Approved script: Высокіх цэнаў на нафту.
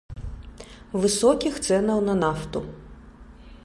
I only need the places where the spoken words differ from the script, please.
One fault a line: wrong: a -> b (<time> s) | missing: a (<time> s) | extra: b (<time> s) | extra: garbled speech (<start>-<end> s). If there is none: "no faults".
no faults